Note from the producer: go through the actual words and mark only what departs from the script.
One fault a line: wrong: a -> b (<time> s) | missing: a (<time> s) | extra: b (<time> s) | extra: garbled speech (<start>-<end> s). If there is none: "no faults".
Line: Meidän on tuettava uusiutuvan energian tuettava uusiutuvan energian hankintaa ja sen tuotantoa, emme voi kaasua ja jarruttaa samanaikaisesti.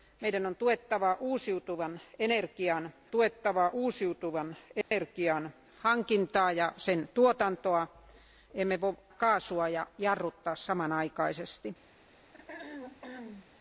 no faults